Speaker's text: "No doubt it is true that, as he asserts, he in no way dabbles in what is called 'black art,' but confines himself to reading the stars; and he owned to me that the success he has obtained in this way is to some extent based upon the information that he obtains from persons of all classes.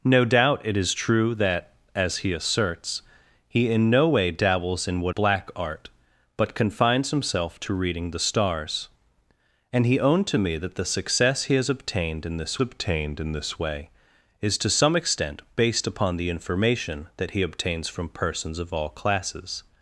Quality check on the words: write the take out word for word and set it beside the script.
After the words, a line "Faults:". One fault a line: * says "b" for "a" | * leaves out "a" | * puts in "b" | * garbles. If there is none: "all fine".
"No doubt it is true that, as he asserts, he in no way dabbles in what 'black art,' but confines himself to reading the stars; and he owned to me that the success he has obtained in this obtained in this way is to some extent based upon the information that he obtains from persons of all classes.
Faults:
* leaves out "is called"
* puts in "obtained in this"